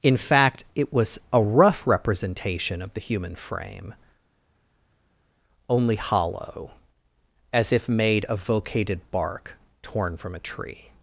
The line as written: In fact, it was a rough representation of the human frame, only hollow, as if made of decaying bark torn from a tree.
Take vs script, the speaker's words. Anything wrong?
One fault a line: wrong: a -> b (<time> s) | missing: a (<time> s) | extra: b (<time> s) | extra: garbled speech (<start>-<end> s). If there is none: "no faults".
wrong: decaying -> vocated (8.4 s)